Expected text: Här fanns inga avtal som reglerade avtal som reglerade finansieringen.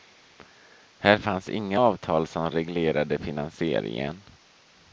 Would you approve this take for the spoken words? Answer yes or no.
no